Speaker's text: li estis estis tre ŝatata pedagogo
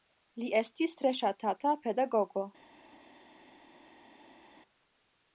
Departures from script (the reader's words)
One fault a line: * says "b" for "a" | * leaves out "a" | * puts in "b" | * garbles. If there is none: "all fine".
* leaves out "estis"